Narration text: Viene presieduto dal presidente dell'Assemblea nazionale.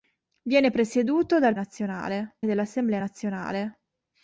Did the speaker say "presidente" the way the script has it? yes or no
no